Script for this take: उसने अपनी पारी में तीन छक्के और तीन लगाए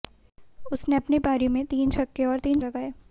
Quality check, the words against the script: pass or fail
pass